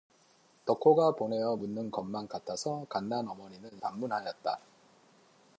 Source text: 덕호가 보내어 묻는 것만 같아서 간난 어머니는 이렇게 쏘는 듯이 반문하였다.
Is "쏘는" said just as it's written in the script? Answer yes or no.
no